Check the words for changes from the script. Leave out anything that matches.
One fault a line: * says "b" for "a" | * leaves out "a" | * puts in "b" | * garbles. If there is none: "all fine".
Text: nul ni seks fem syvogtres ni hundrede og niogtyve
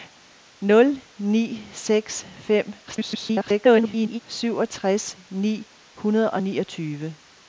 * garbles